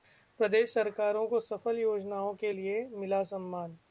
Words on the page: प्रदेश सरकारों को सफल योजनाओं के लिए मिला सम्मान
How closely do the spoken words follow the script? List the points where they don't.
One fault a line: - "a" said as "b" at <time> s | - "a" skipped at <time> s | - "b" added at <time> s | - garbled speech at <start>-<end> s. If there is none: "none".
none